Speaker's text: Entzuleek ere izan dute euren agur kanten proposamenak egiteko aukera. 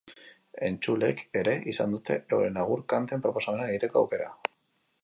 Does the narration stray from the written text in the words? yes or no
no